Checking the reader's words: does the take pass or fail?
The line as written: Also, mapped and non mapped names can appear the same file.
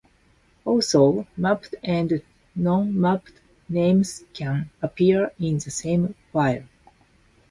fail